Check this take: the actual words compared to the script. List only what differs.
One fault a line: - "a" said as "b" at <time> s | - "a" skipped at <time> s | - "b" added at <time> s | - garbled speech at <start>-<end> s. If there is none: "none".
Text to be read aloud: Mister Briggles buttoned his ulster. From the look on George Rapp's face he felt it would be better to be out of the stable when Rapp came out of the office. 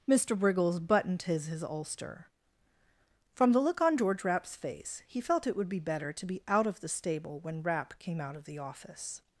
- "his" added at 1.4 s